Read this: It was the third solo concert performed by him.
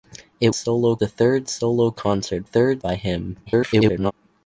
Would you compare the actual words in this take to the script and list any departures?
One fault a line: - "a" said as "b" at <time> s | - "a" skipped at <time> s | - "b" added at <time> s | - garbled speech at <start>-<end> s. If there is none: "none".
- "was" said as "solo" at 0.5 s
- "performed" said as "third" at 2.4 s
- garbled speech at 3.5-4.1 s